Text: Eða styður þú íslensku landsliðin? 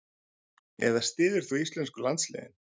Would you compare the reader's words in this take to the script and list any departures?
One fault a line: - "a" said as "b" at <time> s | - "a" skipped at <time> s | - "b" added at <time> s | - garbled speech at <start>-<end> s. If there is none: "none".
none